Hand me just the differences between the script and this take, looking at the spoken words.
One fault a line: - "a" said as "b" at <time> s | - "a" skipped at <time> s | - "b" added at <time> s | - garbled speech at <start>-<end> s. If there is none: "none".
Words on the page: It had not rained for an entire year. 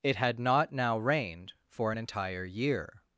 - "now" added at 0.7 s